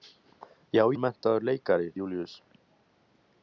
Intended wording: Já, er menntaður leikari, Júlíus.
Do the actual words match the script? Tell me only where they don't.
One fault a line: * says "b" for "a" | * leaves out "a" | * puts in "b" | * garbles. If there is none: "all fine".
all fine